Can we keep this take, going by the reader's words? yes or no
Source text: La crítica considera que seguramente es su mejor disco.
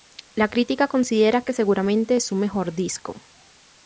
yes